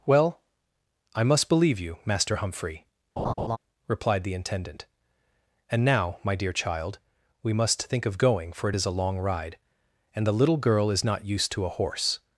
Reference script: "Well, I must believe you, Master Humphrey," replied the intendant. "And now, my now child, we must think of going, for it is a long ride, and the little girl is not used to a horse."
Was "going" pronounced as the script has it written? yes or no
yes